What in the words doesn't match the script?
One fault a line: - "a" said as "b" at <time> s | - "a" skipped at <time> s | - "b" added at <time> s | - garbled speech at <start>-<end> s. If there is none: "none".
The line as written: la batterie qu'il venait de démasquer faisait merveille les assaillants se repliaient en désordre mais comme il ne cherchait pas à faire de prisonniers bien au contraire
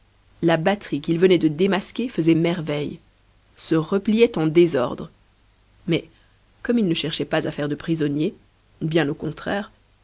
- "les assaillants" skipped at 3.0 s